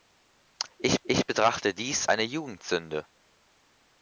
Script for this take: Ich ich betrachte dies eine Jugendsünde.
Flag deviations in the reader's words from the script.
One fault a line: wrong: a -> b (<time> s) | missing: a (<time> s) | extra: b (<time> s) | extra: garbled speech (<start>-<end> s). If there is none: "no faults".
no faults